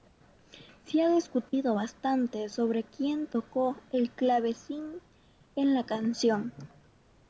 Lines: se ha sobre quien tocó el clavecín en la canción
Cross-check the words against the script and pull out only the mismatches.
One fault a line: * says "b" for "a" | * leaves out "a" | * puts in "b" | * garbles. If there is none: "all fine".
* puts in "discutido bastante"